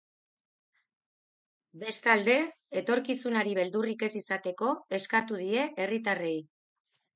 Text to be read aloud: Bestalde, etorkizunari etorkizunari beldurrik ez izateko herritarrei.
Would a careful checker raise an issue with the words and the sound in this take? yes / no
yes